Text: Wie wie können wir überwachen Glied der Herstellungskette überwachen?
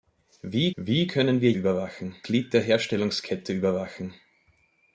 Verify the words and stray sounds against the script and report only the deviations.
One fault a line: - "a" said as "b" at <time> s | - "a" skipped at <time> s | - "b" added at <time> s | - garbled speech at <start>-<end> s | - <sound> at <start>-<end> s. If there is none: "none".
none